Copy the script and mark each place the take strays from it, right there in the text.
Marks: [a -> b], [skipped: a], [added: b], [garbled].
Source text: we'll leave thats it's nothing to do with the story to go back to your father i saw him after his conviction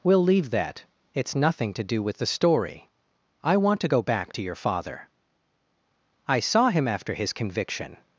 we'll leave [thats -> that] it's nothing to do with the story [added: i want] to go back to your father i saw him after his conviction